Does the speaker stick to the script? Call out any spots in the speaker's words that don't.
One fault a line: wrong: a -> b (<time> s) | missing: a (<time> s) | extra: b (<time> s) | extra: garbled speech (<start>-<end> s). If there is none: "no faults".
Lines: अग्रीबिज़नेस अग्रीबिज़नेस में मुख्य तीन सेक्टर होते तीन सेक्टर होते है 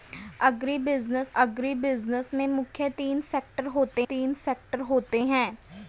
no faults